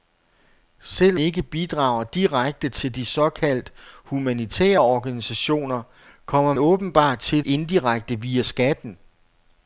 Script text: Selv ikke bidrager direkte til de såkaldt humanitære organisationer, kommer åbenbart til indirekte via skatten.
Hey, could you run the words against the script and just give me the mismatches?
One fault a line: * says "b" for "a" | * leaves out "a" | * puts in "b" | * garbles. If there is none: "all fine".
all fine